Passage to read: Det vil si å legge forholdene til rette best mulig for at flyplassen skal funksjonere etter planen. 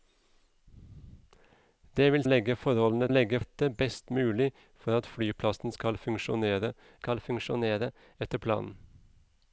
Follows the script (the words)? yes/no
no